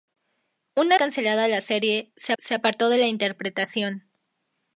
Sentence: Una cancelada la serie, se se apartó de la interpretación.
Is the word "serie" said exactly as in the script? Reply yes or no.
yes